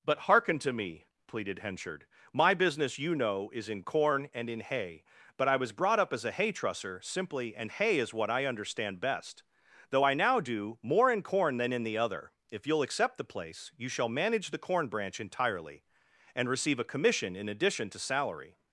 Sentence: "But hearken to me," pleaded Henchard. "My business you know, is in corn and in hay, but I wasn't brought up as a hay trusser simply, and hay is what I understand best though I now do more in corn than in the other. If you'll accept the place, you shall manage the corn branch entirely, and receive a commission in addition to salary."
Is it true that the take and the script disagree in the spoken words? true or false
true